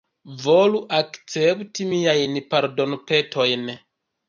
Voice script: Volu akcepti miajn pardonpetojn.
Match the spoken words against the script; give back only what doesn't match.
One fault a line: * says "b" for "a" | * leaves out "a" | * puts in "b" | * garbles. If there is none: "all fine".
all fine